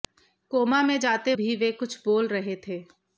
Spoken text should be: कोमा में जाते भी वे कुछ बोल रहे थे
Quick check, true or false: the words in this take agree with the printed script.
true